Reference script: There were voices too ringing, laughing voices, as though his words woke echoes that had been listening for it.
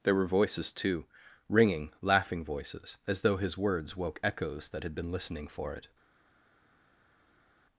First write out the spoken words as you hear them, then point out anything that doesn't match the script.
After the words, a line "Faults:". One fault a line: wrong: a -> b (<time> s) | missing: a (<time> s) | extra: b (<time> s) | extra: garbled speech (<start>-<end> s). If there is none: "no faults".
There were voices too ringing, laughing voices, as though his words woke echoes that had been listening for it.
Faults:
no faults